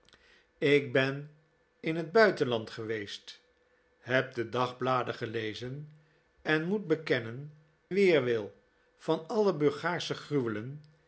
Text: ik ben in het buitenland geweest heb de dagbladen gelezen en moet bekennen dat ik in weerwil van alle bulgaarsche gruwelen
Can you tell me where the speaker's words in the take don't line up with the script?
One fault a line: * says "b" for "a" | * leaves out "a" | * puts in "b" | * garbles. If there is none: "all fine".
* leaves out "dat ik in"